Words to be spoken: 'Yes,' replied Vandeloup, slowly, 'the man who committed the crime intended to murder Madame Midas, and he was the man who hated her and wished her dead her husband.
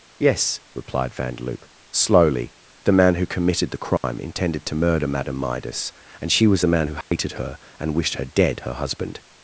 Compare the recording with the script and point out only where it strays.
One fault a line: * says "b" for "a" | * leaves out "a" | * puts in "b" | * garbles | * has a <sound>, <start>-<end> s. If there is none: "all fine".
* has a dropout, 4.0-4.0 s
* says "she" for "he"
* has a dropout, 7.0-7.1 s